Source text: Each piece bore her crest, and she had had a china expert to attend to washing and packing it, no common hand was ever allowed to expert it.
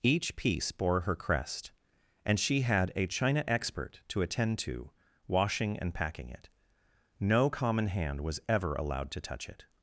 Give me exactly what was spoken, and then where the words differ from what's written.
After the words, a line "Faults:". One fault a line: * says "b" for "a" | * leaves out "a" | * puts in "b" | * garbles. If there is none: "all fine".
Each piece bore her crest, and she had a china expert to attend to washing and packing it, no common hand was ever allowed to touch it.
Faults:
* leaves out "had"
* says "touch" for "expert"